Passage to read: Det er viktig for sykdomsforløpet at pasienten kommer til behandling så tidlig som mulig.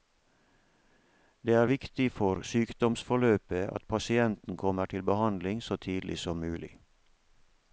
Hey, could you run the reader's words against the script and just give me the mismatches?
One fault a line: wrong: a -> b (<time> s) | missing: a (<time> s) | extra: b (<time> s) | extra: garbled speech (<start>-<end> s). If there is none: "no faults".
no faults